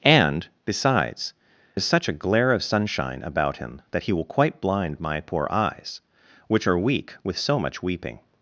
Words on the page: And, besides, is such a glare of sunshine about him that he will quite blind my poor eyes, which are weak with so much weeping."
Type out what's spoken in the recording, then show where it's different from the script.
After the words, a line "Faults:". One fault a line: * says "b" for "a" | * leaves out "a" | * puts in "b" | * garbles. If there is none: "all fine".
And, besides, is such a glare of sunshine about him that he will quite blind my poor eyes, which are weak with so much weeping."
Faults:
all fine